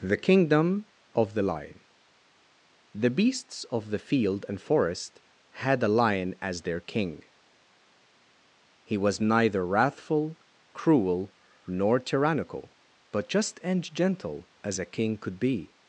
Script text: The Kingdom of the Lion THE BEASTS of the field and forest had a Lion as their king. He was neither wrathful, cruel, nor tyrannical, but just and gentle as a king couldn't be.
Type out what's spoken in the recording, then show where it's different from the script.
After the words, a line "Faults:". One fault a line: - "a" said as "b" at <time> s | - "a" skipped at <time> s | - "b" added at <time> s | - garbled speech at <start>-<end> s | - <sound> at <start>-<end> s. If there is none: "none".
The Kingdom of the Lion THE BEASTS of the field and forest had a Lion as their king. He was neither wrathful, cruel, nor tyrannical, but just and gentle as a king could be.
Faults:
- "couldn't" said as "could" at 15.2 s